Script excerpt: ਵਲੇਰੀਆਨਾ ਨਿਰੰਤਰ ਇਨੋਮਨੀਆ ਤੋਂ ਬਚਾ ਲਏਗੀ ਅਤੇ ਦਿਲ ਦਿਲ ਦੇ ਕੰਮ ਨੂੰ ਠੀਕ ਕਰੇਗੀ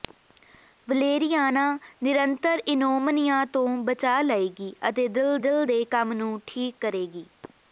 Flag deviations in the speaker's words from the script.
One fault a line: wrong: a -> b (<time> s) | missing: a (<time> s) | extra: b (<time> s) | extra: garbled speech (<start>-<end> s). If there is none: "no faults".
no faults